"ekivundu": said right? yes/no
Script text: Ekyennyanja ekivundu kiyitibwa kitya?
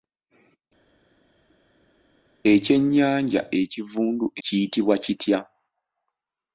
yes